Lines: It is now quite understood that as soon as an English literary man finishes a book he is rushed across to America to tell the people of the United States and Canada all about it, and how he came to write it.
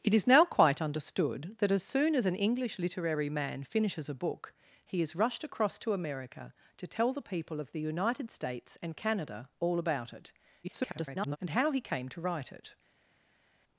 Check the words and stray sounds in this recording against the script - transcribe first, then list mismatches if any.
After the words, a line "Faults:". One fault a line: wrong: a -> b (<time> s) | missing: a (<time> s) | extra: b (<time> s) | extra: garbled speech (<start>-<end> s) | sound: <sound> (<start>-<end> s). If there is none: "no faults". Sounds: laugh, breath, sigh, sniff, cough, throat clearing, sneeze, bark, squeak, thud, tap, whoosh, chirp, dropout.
It is now quite understood that as soon as an English literary man finishes a book he is rushed across to America to tell the people of the United States and Canada all about it, [garbled] and how he came to write it.
Faults:
extra: garbled speech (10.6-11.4 s)